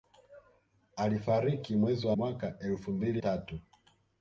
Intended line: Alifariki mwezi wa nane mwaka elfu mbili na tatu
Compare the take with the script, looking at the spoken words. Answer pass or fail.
fail